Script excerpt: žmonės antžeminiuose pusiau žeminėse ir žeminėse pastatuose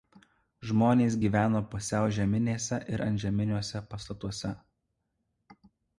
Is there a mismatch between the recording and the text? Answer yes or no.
yes